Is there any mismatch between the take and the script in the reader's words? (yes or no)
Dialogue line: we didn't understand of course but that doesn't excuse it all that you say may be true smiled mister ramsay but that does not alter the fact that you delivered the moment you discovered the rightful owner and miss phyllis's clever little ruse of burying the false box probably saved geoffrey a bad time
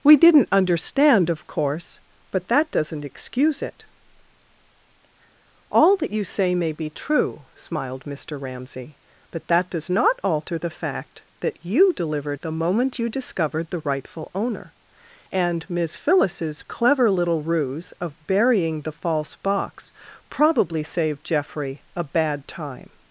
no